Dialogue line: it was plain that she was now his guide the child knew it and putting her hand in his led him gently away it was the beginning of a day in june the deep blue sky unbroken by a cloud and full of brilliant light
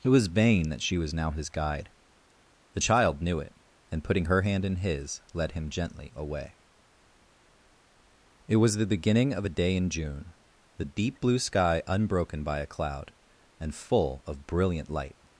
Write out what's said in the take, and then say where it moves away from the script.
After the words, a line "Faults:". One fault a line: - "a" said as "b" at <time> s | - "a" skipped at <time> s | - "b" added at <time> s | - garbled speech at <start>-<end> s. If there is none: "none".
it was vain that she was now his guide the child knew it and putting her hand in his led him gently away it was the beginning of a day in june the deep blue sky unbroken by a cloud and full of brilliant light
Faults:
- "plain" said as "vain" at 0.3 s